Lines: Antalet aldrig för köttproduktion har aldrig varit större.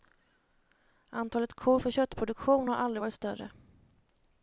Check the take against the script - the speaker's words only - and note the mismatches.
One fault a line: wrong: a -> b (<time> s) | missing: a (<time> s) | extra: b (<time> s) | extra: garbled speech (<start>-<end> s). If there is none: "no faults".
wrong: aldrig -> kor (1.5 s)